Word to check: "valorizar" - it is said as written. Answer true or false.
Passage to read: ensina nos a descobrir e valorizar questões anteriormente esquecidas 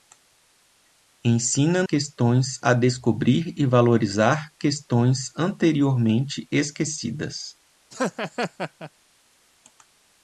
true